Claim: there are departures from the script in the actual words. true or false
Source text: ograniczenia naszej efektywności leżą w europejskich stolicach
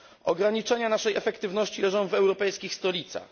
false